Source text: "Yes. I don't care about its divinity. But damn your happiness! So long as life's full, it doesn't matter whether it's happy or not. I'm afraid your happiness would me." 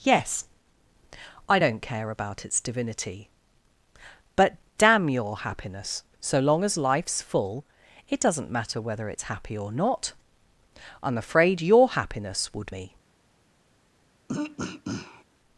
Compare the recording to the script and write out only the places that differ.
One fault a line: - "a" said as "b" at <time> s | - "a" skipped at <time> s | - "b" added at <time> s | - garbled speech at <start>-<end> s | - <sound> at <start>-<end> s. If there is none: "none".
- throat clearing at 14.3-15.2 s